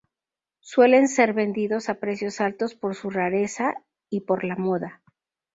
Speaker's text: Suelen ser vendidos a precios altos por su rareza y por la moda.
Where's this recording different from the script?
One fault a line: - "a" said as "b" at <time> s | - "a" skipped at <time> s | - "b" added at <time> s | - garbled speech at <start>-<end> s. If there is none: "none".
none